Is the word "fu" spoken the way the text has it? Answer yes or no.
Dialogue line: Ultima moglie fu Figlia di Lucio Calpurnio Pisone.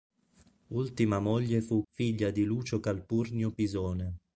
yes